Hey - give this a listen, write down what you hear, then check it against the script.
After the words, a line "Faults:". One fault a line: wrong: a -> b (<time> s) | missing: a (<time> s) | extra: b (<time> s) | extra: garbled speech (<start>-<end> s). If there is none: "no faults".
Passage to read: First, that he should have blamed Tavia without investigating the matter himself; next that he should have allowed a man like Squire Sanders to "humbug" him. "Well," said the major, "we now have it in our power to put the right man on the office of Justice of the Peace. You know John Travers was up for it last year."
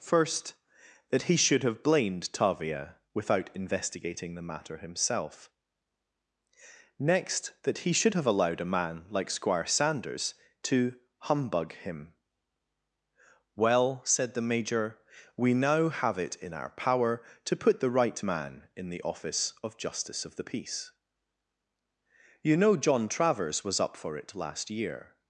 First, that he should have blamed Tavia without investigating the matter himself; next that he should have allowed a man like Squire Sanders to "humbug" him. "Well," said the major, "we now have it in our power to put the right man in the office of Justice of the Peace. You know John Travers was up for it last year."
Faults:
wrong: on -> in (18.7 s)